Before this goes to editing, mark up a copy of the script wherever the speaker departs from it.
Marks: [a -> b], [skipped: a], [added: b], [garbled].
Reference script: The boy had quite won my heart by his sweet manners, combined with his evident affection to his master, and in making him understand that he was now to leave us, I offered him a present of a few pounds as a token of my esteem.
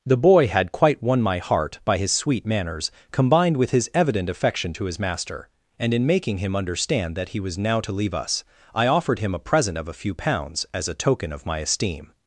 The boy had quite won my heart by his sweet manners, combined with his evident affection to his master, and in making him understand that he was now to leave us, I offered him a present of a few pounds as a token of my esteem.